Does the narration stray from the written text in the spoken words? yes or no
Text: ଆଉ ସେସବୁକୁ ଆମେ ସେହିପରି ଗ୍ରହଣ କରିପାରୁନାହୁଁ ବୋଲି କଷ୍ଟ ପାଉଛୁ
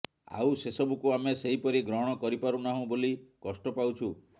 no